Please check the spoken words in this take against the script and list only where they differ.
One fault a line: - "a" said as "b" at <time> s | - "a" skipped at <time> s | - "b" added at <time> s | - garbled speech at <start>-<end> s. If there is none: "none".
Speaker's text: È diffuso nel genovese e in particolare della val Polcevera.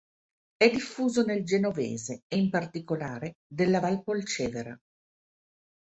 none